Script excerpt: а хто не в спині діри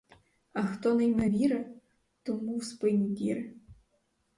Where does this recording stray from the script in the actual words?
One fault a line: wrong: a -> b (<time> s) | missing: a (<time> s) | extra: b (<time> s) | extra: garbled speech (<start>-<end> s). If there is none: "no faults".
extra: йме віри тому (1.1 s)